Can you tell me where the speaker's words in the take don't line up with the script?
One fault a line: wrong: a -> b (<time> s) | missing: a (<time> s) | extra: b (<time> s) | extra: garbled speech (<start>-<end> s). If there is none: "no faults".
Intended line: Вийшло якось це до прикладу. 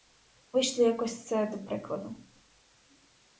no faults